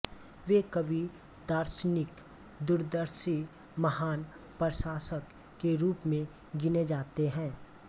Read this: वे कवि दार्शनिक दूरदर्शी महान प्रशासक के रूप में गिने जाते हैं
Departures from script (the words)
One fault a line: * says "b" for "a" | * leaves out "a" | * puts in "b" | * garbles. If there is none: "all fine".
all fine